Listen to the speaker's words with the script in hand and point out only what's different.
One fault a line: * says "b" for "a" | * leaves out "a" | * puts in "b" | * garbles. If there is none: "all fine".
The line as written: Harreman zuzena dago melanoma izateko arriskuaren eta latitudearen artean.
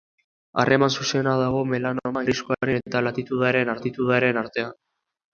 * leaves out "izateko"
* puts in "latitudearen"